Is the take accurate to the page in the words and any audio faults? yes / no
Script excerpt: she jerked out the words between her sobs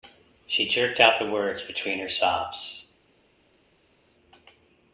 yes